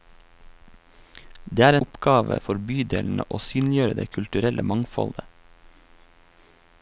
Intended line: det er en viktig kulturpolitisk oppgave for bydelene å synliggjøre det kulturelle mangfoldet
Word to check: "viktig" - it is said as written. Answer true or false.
false